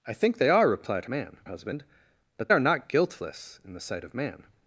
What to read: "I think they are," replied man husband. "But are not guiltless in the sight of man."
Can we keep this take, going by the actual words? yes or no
yes